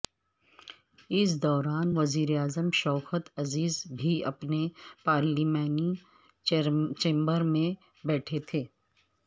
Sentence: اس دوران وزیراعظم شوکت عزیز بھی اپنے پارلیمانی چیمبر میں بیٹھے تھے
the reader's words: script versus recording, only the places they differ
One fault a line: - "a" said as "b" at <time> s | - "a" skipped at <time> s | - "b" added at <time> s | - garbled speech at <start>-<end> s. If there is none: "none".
none